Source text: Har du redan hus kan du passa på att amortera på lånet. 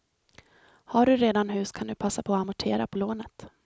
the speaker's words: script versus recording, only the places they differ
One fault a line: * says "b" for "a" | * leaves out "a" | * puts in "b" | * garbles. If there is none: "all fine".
all fine